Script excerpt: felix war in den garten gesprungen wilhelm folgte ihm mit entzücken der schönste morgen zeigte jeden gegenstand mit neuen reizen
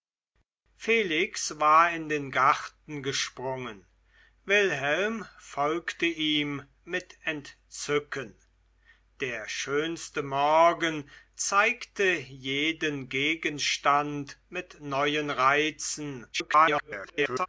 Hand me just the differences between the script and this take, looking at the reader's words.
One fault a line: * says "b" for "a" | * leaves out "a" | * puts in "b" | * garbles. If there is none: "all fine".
* garbles